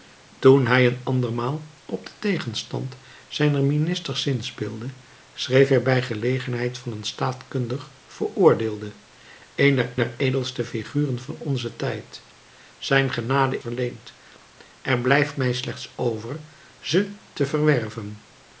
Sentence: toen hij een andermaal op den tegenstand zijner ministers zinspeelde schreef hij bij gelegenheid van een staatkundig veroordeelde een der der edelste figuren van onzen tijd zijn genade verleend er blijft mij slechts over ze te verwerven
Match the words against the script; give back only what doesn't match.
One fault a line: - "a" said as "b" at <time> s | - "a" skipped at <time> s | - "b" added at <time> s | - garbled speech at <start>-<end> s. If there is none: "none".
none